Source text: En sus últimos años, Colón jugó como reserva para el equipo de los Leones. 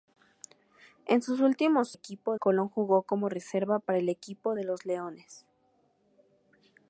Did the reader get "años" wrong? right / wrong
wrong